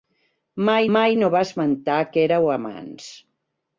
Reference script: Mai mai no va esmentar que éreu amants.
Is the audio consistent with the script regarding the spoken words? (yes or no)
yes